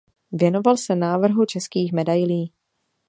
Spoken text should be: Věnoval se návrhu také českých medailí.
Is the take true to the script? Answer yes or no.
no